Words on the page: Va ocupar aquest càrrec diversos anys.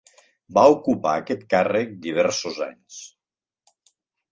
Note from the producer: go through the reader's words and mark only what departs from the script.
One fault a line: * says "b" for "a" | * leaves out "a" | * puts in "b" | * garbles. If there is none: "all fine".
all fine